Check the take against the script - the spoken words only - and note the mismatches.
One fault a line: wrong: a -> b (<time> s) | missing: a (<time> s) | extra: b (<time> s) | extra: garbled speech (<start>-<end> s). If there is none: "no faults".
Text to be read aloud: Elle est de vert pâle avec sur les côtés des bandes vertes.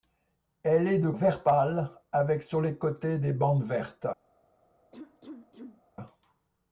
no faults